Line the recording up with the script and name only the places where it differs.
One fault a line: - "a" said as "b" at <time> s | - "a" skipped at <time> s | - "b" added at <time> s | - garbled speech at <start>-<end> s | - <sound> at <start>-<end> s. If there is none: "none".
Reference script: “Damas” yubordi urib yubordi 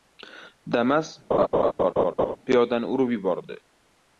- laugh at 1.3-2.4 s
- "yubordi" said as "piyodani" at 2.5 s